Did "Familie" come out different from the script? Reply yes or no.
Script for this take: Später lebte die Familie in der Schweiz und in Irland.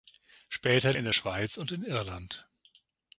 yes